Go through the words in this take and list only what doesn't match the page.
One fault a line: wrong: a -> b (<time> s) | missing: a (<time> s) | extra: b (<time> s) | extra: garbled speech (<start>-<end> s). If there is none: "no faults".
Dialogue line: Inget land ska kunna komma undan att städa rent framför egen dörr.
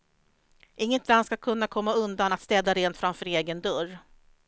no faults